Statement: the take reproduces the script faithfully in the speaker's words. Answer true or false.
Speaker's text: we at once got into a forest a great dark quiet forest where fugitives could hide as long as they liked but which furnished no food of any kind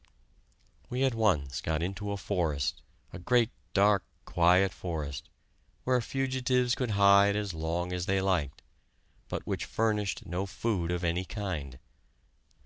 true